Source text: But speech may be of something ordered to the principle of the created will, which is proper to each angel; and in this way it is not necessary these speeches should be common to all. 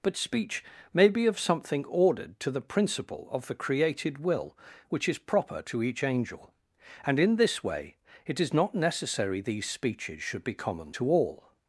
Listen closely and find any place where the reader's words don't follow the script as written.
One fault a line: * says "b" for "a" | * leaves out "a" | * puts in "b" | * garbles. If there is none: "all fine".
all fine